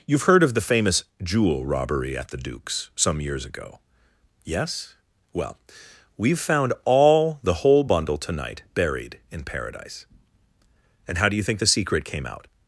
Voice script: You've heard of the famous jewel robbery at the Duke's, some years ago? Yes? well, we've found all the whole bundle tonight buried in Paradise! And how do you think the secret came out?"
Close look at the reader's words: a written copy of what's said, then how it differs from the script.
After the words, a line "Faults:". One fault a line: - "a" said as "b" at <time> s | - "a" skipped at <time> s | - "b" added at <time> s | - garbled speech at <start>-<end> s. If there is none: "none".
You've heard of the famous jewel robbery at the Duke's, some years ago? Yes? well, we've found all the whole bundle tonight buried in Paradise! And how do you think the secret came out?"
Faults:
none